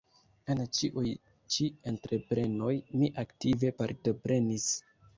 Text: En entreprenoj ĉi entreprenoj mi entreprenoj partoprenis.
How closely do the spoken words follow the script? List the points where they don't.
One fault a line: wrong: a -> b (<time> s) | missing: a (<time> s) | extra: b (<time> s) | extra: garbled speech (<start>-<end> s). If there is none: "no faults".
wrong: entreprenoj -> ĉiuj (0.8 s)
wrong: entreprenoj -> aktive (3.3 s)